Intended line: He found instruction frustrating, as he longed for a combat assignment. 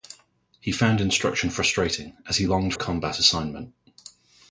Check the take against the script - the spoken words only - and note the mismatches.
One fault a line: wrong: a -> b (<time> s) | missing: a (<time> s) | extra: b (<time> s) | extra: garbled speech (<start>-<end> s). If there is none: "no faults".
missing: for (2.7 s)